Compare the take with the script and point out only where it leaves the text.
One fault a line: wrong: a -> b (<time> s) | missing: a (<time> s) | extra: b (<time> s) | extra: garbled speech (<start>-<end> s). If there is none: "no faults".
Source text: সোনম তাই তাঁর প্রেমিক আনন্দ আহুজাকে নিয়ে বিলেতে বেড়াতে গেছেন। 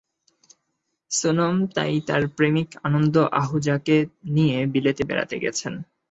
no faults